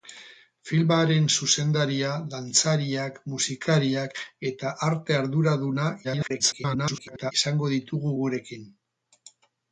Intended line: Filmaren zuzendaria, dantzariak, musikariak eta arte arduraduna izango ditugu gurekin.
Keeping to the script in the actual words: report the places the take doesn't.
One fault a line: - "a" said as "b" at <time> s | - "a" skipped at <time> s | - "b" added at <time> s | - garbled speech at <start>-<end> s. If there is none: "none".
- garbled speech at 6.0-7.3 s